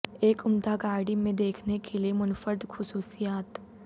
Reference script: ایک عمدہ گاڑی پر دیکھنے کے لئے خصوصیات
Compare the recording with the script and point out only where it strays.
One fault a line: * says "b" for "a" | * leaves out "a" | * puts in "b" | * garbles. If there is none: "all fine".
* says "میں" for "پر"
* puts in "منفرد"